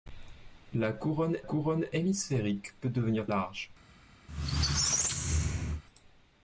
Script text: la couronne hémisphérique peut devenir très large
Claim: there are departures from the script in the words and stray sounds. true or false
true